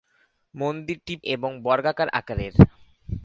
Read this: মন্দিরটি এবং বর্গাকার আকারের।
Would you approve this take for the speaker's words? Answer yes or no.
yes